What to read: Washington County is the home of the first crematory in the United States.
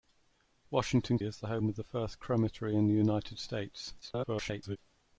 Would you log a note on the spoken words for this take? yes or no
yes